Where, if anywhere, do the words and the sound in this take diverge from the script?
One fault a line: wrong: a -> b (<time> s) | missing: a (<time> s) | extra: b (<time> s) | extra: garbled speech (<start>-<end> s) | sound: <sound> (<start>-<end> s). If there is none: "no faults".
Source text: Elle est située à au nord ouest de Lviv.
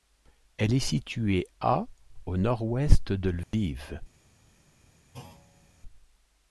sound: dropout (3.4-3.5 s)
sound: thud (5.1-5.8 s)